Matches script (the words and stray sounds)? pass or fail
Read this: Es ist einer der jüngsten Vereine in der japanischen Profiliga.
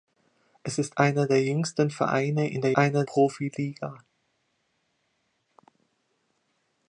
fail